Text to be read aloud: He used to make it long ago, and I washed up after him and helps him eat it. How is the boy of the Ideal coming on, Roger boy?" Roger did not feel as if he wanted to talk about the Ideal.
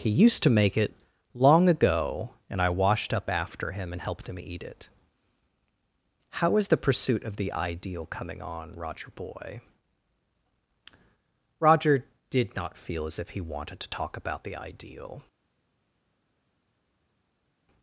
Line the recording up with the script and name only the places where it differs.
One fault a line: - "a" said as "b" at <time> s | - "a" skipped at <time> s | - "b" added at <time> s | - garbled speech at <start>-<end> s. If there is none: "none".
- "helps" said as "helped" at 4.0 s
- "boy" said as "pursuit" at 6.8 s